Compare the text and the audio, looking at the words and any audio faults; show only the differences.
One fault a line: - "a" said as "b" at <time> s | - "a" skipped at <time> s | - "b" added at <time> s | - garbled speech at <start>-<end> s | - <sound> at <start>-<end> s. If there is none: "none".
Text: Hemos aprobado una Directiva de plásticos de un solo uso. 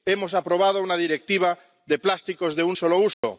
- dropout at 3.1-3.2 s